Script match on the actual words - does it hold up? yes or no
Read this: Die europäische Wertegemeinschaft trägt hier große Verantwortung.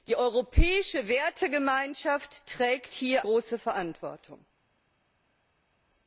yes